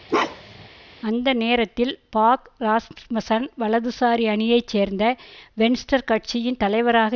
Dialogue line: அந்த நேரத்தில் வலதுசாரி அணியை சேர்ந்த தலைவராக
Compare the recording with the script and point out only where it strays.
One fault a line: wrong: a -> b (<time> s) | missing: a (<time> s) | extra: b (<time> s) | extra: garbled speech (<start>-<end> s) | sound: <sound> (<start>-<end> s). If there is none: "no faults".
sound: bark (0.1-0.7 s)
extra: பாக் ராஸ்மசன் (2.1 s)
extra: வென்ஸ்டர் கட்சியின் (5.5 s)